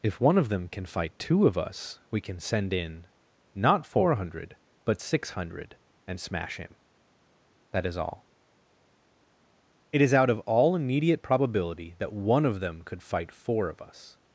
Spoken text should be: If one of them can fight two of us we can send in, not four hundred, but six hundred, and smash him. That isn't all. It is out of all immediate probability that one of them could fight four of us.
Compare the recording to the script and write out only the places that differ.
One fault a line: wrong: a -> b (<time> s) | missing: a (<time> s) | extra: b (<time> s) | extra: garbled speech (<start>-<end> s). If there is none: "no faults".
wrong: isn't -> is (7.8 s)